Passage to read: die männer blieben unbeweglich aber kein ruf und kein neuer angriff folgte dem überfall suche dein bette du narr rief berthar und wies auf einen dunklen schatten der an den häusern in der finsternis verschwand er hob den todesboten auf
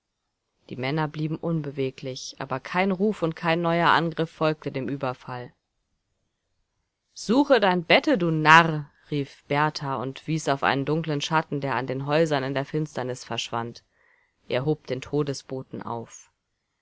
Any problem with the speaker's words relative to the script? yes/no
no